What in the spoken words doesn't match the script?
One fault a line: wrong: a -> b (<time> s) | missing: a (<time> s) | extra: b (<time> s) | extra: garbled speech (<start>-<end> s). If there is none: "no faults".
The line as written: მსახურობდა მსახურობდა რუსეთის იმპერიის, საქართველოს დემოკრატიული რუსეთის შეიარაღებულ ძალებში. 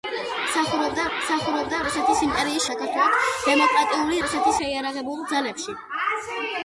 no faults